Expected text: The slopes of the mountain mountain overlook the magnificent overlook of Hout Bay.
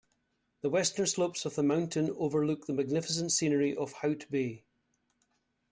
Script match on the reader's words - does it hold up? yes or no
no